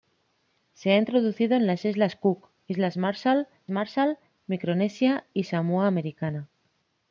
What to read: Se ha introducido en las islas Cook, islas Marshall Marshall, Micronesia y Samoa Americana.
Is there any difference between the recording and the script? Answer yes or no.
no